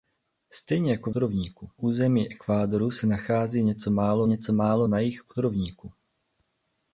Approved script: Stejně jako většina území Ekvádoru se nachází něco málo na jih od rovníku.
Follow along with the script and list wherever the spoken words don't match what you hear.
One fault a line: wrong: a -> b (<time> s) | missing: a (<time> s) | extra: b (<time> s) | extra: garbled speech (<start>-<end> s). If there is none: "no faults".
wrong: většina -> rovníku (1.1 s)
extra: něco málo (4.3 s)